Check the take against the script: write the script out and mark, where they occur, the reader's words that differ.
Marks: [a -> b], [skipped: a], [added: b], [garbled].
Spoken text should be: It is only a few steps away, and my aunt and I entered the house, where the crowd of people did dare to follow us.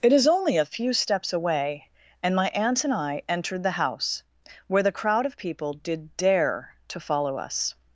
It is only a few steps away, and my aunt and I entered the house, where the crowd of people did dare to follow us.